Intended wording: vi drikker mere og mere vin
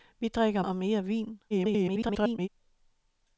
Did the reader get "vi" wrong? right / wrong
right